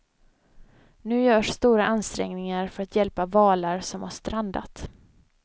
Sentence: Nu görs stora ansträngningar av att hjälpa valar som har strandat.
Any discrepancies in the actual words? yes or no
yes